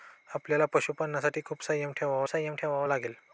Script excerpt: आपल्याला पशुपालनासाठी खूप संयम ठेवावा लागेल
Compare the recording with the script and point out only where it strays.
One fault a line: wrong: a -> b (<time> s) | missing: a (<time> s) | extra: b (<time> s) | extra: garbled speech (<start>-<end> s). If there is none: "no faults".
extra: संयम ठेवावा (2.3 s)